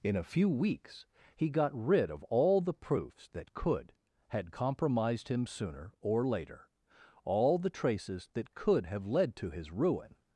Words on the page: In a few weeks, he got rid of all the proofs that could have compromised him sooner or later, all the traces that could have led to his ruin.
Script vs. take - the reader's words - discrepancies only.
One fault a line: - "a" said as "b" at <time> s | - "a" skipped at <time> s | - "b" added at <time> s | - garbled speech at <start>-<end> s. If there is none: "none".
- "have" said as "had" at 4.3 s